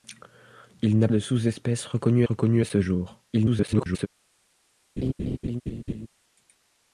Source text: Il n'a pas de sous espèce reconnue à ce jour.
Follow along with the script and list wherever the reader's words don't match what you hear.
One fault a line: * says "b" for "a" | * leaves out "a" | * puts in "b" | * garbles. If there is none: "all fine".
* leaves out "pas"
* puts in "reconnue"
* garbles